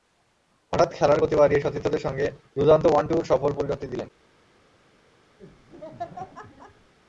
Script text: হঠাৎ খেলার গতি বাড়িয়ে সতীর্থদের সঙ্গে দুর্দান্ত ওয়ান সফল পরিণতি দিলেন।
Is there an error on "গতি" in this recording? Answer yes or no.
no